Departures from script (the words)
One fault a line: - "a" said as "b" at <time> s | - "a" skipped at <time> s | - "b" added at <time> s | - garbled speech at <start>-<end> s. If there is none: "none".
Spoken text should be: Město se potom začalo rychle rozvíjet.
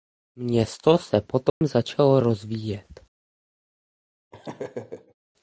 - "rychle" skipped at 2.2 s